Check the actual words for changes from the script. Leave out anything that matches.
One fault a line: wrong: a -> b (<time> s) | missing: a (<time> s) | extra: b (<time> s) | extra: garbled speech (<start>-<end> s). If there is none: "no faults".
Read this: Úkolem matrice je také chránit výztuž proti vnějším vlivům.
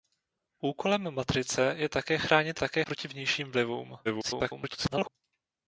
wrong: výztuž -> také (2.6 s)
extra: garbled speech (4.0-5.1 s)